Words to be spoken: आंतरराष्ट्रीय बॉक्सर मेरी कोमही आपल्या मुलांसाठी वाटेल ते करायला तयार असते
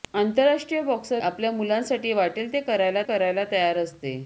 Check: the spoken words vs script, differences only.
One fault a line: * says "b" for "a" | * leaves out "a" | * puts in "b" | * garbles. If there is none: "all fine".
* leaves out "मेरी कोमही"
* puts in "करायला"